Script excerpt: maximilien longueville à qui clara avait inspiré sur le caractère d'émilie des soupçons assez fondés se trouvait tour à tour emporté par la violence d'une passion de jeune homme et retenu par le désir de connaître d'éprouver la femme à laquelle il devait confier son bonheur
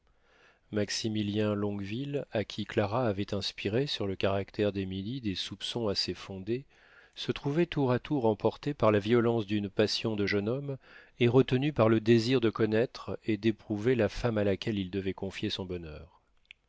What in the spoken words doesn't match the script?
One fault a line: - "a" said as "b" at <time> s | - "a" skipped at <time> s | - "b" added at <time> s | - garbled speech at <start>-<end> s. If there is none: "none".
- "et" added at 13.3 s